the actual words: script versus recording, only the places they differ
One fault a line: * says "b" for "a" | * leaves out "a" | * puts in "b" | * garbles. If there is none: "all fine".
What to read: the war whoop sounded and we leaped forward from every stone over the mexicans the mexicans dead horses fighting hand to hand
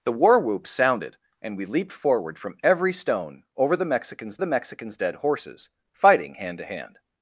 all fine